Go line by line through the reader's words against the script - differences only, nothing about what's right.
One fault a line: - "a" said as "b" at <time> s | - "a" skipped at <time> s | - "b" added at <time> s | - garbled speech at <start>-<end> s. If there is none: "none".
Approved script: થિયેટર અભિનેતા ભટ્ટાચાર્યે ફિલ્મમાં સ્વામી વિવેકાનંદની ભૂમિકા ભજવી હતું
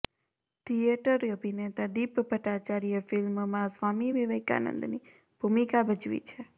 - "દીપ" added at 1.9 s
- "હતું" said as "છે" at 6.3 s